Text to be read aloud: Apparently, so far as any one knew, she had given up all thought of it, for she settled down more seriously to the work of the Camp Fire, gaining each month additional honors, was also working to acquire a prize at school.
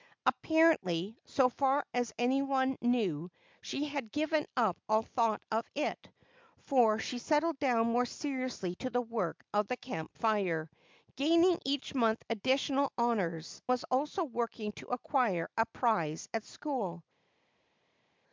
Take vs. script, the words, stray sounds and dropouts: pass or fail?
pass